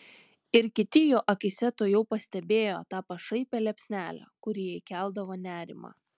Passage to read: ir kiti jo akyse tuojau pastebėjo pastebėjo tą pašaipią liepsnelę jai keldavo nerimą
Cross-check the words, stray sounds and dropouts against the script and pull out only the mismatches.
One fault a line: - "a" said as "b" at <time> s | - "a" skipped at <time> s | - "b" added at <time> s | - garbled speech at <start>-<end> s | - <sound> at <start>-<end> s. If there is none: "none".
- "pastebėjo" skipped at 2.8 s
- "kuri" added at 4.5 s